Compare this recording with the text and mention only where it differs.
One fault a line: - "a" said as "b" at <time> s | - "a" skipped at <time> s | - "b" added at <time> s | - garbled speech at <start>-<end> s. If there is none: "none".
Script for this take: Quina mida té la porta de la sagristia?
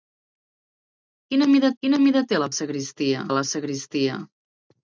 - "quina mida" added at 1.8 s
- "porta" said as "sagristia" at 2.6 s